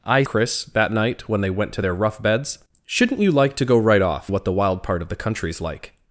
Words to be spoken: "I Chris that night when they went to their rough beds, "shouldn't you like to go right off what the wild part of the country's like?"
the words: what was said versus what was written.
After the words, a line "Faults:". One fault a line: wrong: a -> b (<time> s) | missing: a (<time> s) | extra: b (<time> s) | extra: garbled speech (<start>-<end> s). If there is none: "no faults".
"I Chris that night when they went to their rough beds, "shouldn't you like to go right off what the wild part of the country's like?"
Faults:
no faults